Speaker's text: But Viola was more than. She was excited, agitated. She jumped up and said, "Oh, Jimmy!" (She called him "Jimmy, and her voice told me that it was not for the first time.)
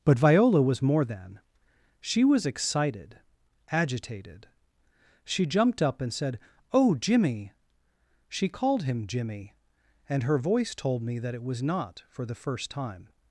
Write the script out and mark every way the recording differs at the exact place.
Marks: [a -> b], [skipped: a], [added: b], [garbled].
But Viola was more than. She was excited, agitated. She jumped up and said, "Oh, Jimmy!" (She called him "Jimmy, and her voice told me that it was not for the first time.)